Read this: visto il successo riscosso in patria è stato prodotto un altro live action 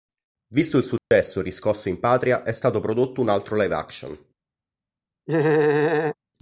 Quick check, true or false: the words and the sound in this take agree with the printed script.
false